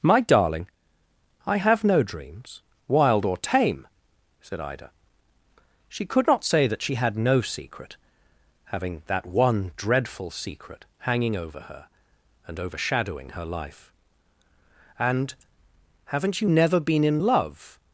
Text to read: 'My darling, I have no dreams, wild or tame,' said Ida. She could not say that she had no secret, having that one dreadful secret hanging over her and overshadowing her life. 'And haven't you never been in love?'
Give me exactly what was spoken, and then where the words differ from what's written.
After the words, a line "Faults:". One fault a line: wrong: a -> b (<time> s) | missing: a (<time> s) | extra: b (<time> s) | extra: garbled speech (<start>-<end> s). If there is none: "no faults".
'My darling, I have no dreams, wild or tame,' said Ida. She could not say that she had no secret, having that one dreadful secret hanging over her and overshadowing her life. 'And haven't you never been in love?'
Faults:
no faults